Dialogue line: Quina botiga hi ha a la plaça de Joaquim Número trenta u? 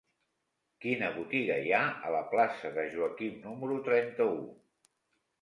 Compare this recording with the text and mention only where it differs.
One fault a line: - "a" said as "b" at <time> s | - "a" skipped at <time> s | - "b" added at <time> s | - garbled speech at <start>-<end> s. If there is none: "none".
none